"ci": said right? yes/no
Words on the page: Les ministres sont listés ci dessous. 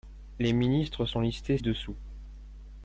no